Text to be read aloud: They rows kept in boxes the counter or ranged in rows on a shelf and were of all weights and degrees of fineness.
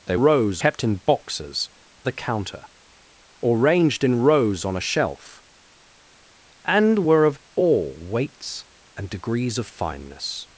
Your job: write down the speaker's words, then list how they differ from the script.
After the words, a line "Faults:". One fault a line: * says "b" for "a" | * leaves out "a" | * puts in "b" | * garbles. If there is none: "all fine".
They rows kept in boxes the counter or ranged in rows on a shelf and were of all weights and degrees of fineness.
Faults:
all fine